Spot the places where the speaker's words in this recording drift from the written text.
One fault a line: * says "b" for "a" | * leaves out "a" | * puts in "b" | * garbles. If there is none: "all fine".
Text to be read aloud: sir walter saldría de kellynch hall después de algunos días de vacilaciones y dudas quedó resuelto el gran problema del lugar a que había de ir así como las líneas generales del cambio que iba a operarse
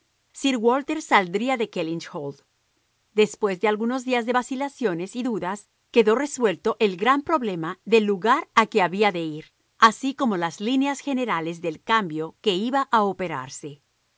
all fine